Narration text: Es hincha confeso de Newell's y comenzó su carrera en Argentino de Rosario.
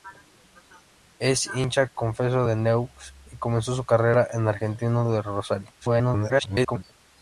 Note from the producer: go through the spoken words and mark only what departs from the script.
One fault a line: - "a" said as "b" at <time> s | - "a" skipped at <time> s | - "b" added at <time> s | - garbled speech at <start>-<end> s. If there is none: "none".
- garbled speech at 5.8-6.8 s